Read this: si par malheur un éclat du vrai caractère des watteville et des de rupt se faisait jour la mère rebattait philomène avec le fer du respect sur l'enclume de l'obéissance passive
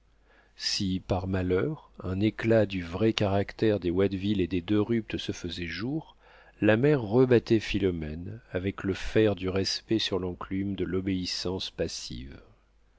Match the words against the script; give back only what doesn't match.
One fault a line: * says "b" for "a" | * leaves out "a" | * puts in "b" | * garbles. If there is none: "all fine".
all fine